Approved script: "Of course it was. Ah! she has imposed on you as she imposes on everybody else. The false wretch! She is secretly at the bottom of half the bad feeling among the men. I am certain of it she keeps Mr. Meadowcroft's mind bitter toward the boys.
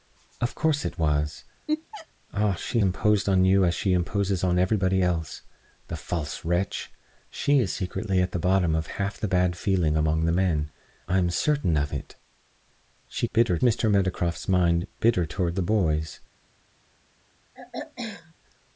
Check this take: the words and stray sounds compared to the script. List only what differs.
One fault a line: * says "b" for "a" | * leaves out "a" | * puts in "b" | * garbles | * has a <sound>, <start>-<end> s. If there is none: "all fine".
* has a laugh, 1.7-2.1 s
* leaves out "has"
* says "bitter" for "keeps"
* has a throat clearing, 17.5-18.3 s